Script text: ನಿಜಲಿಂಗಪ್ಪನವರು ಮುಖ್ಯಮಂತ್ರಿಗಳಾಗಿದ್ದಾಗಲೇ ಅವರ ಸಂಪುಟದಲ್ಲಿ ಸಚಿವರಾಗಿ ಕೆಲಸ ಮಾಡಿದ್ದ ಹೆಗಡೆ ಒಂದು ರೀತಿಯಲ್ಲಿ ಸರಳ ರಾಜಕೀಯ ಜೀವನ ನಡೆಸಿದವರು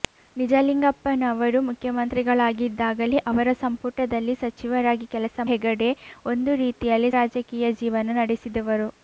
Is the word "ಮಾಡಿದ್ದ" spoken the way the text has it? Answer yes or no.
no